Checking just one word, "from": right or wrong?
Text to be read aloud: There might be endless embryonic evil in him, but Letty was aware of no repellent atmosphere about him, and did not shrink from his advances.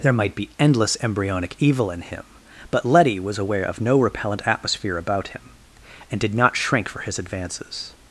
wrong